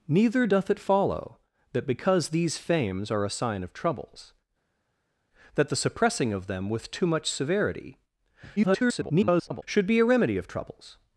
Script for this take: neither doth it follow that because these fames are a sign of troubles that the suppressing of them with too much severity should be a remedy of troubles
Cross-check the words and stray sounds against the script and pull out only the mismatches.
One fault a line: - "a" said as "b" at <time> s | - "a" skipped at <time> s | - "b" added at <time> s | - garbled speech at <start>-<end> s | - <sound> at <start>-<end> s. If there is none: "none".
- garbled speech at 8.6-9.6 s